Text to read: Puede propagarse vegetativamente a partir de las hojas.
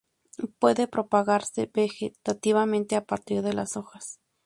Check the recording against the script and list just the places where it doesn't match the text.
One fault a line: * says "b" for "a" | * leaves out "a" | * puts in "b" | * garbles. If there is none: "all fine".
all fine